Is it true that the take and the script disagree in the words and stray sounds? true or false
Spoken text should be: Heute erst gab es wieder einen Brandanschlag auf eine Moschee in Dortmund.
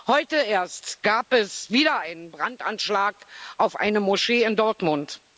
false